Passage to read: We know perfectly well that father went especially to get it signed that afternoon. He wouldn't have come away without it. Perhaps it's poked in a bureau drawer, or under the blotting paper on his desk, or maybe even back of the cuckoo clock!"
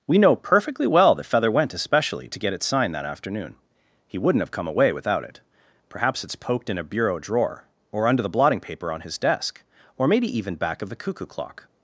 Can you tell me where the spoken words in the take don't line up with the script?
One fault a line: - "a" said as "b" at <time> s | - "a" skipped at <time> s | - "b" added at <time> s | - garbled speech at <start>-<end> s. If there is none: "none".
- "father" said as "feather" at 1.2 s